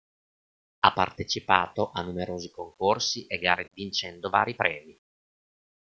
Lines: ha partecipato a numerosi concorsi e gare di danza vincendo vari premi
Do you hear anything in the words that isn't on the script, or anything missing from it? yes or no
yes